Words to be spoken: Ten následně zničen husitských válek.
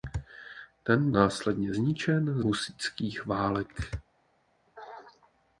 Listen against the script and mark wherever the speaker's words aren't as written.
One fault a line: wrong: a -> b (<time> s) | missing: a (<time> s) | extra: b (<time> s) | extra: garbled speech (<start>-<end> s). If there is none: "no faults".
no faults